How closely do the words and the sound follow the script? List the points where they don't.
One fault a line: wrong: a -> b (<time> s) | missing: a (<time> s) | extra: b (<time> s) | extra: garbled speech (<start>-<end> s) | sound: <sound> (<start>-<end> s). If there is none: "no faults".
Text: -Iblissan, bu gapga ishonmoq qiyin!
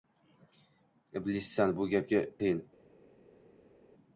missing: ishonmoq (2.2 s)